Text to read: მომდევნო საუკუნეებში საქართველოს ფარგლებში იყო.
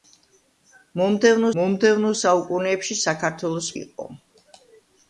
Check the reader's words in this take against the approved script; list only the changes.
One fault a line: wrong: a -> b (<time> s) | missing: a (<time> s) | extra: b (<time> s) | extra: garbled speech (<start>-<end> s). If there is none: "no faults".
extra: მომდევნო (1.6 s)
missing: ფარგლებში (3.7 s)